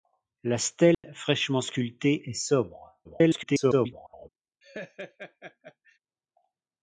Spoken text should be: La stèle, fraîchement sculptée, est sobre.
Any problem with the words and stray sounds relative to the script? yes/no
yes